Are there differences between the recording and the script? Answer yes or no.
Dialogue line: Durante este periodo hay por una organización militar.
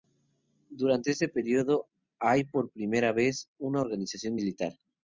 yes